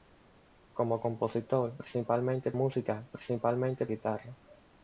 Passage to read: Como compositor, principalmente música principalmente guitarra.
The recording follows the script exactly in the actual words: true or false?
true